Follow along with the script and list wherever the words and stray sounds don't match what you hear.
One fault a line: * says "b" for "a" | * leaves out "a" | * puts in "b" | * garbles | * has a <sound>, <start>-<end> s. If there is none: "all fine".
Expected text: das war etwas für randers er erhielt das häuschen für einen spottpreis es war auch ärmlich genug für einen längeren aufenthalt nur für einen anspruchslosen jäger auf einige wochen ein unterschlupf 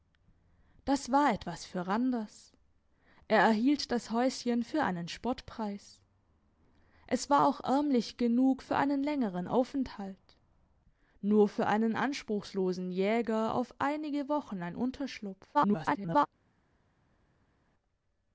* garbles